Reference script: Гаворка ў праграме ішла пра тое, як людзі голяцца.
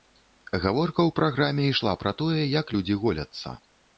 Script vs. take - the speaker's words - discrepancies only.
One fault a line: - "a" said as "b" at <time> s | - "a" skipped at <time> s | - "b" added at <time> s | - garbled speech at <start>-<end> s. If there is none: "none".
none